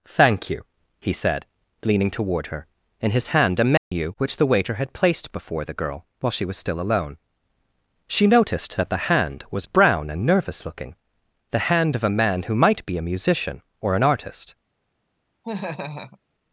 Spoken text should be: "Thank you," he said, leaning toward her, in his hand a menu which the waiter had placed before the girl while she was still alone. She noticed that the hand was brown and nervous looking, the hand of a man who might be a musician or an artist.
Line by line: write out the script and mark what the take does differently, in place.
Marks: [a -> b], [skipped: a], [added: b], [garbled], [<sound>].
"Thank you," he said, leaning toward her, in his hand a menu [dropout] which the waiter had placed before the girl while she was still alone. She noticed that the hand was brown and nervous looking, the hand of a man who might be a musician or an artist. [laugh]